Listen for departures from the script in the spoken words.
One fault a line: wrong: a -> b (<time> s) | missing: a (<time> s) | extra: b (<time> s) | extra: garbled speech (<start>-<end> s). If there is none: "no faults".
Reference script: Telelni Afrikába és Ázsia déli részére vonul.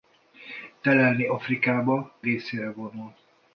missing: és Ázsia déli (2.1 s)